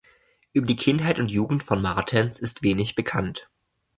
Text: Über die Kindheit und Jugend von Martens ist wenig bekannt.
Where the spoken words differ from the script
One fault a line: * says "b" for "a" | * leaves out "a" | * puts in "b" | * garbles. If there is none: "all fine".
all fine